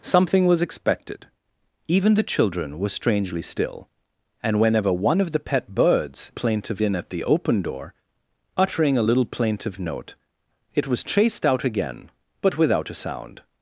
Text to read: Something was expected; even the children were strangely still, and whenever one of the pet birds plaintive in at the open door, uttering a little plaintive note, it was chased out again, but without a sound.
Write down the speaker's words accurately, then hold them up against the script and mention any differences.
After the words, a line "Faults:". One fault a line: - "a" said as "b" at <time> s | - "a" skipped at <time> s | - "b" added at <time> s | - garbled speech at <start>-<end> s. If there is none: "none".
Something was expected; even the children were strangely still, and whenever one of the pet birds plaintive in at the open door, uttering a little plaintive note, it was chased out again, but without a sound.
Faults:
none